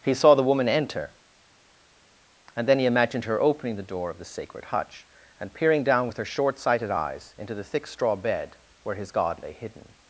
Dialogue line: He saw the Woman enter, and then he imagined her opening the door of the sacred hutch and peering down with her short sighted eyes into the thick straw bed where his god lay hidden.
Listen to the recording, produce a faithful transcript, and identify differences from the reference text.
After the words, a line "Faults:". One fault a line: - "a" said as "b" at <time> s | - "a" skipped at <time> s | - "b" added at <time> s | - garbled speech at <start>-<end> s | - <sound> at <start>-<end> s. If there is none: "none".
He saw the Woman enter, and then he imagined her opening the door of the sacred hutch and peering down with her short sighted eyes into the thick straw bed where his god lay hidden.
Faults:
none